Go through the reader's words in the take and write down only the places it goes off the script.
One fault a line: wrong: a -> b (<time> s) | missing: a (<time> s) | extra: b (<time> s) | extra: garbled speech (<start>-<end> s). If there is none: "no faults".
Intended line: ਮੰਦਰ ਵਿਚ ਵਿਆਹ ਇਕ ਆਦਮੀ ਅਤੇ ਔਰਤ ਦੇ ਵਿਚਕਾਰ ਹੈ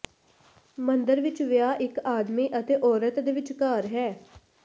no faults